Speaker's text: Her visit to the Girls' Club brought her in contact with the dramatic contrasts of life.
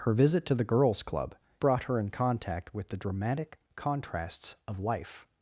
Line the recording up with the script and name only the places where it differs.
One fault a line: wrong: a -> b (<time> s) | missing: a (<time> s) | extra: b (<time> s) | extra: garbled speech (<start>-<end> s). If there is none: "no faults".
no faults